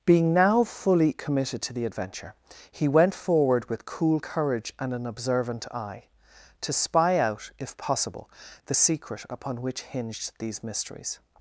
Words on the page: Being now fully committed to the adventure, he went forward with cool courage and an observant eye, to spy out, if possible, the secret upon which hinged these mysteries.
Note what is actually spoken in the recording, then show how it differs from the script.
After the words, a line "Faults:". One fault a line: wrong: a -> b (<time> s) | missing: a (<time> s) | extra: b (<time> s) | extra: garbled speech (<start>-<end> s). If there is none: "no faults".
Being now fully committed to the adventure, he went forward with cool courage and an observant eye, to spy out, if possible, the secret upon which hinged these mysteries.
Faults:
no faults